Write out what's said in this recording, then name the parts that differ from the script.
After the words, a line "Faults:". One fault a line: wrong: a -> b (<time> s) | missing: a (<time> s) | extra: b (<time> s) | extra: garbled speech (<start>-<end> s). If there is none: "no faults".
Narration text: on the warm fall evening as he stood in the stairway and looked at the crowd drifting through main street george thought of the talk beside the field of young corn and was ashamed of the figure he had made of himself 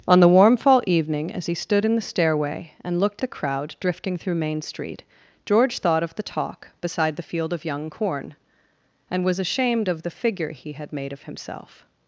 on the warm fall evening as he stood in the stairway and looked the crowd drifting through main street george thought of the talk beside the field of young corn and was ashamed of the figure he had made of himself
Faults:
missing: at (3.2 s)